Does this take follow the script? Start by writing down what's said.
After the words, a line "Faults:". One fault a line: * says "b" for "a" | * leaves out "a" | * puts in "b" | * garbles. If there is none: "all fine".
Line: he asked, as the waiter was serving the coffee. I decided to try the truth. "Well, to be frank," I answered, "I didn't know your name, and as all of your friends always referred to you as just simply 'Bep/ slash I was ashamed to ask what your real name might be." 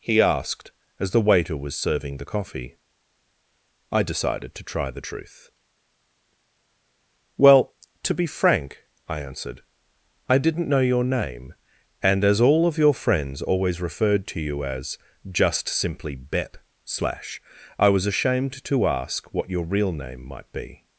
he asked, as the waiter was serving the coffee. I decided to try the truth. "Well, to be frank," I answered, "I didn't know your name, and as all of your friends always referred to you as just simply 'Bep/ slash I was ashamed to ask what your real name might be."
Faults:
all fine